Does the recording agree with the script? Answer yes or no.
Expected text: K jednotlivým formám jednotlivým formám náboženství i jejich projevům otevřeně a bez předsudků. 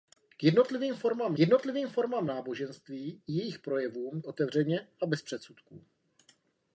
yes